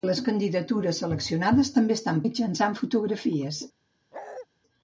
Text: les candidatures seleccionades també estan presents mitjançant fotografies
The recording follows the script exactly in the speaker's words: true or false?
false